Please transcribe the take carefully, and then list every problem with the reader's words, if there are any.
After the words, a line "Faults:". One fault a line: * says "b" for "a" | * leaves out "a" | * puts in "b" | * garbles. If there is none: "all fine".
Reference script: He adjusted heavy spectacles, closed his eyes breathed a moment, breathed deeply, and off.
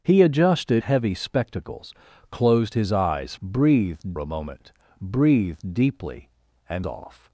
He adjusted heavy spectacles, closed his eyes breathed a moment, breathed deeply, and off.
Faults:
all fine